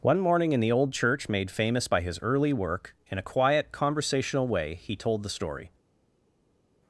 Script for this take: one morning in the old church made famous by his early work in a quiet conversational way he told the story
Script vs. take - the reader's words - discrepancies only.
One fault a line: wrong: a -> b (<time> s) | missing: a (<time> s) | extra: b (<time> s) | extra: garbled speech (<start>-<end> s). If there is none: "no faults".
no faults